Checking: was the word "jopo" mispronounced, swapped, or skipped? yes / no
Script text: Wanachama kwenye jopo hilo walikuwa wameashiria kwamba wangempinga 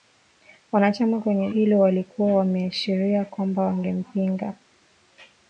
yes